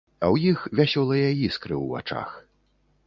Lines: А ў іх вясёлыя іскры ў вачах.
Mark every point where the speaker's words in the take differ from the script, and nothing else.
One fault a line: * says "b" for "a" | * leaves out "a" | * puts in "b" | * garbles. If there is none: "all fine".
all fine